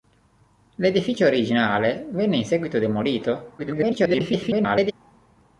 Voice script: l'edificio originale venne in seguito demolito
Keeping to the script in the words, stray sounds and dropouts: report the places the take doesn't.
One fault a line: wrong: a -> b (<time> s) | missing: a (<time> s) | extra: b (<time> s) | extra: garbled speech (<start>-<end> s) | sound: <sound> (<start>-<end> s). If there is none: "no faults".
extra: garbled speech (3.6-4.9 s)